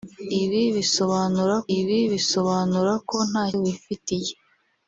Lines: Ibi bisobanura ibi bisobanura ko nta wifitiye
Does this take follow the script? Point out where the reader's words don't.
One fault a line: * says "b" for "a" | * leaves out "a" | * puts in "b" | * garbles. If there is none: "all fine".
all fine